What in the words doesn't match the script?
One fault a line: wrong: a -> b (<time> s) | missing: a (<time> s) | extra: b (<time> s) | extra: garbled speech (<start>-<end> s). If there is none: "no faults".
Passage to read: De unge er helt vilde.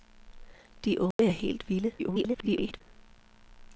extra: garbled speech (2.0-2.8 s)